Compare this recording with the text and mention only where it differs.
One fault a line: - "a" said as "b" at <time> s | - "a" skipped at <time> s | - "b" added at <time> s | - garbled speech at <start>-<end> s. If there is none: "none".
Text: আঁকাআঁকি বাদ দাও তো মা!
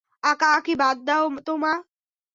none